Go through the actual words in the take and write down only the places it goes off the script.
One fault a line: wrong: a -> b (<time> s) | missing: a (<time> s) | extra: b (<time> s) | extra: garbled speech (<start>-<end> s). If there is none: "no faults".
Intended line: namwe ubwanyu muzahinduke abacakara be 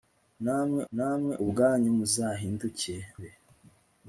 extra: namwe (0.9 s)
missing: abacakara (2.9 s)